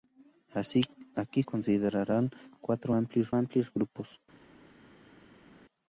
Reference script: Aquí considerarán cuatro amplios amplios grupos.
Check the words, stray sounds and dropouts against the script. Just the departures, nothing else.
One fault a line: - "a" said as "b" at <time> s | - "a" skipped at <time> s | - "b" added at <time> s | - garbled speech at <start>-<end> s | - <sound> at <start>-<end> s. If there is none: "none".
none